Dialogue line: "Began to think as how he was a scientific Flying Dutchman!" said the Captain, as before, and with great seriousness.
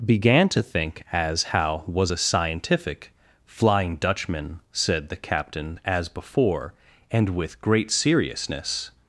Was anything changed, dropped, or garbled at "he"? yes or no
yes